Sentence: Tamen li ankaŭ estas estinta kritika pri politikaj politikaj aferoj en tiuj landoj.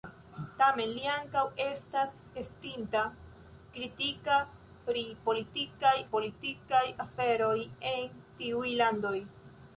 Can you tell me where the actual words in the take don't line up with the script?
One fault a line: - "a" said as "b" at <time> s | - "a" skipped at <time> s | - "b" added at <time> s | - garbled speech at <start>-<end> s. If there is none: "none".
none